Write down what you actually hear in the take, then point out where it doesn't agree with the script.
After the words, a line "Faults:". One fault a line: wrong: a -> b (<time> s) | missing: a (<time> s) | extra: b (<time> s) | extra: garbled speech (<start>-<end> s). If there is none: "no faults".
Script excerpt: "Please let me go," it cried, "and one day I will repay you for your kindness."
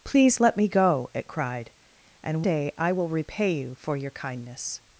"Please let me go," it cried, "and day I will repay you for your kindness."
Faults:
missing: one (2.4 s)